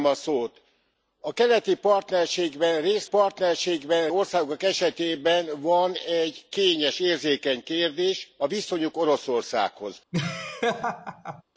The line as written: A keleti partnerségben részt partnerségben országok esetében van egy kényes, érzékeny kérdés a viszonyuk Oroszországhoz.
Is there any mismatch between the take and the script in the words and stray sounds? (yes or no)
yes